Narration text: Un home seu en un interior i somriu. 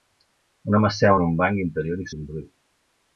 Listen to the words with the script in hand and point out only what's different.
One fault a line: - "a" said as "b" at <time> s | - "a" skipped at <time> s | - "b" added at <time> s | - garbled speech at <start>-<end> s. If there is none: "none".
- "banc" added at 1.4 s